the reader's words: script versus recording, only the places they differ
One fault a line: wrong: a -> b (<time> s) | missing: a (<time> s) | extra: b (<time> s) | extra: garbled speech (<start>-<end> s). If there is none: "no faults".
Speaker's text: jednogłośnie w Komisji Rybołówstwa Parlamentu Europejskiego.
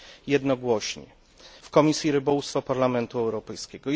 no faults